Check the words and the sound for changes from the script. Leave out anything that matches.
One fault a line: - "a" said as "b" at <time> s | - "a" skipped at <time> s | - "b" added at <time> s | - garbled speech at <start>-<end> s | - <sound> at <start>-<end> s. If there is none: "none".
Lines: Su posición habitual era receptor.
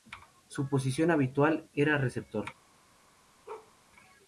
- bark at 3.5-3.7 s